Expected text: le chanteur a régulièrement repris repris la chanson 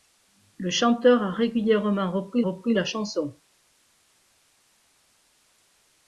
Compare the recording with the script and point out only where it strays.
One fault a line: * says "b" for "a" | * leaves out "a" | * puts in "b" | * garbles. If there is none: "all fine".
all fine